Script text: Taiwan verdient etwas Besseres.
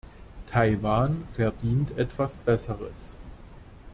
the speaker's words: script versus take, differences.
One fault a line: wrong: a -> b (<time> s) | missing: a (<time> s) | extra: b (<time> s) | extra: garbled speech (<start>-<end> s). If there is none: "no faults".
no faults